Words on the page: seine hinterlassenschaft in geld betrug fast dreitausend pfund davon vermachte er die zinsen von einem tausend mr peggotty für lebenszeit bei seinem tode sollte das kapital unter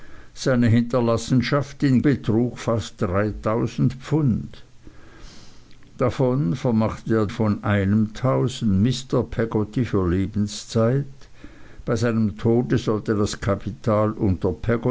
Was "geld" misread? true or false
true